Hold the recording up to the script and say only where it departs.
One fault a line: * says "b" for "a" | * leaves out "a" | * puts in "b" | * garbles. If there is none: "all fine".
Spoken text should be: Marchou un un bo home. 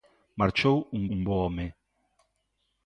all fine